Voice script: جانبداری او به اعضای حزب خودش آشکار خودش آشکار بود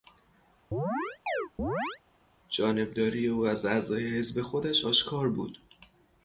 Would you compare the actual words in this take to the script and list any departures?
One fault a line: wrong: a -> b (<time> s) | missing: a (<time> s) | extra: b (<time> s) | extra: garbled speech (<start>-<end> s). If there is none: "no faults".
wrong: به -> از (3.5 s)
missing: خودش آشکار (5.3 s)